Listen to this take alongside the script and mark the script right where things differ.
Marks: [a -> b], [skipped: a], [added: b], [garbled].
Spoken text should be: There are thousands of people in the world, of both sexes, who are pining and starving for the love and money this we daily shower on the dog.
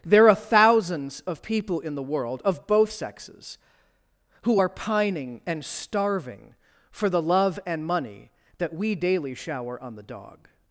There are thousands of people in the world, of both sexes, who are pining and starving for the love and money [this -> that] we daily shower on the dog.